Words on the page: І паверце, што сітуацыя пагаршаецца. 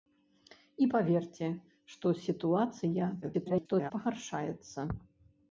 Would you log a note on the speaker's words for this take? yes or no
yes